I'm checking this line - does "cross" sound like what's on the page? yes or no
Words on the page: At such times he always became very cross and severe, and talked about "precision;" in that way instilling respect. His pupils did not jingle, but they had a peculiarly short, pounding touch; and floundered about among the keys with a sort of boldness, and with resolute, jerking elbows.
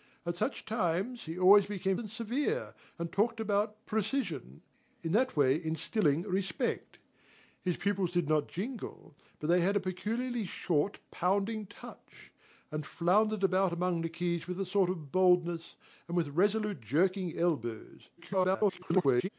no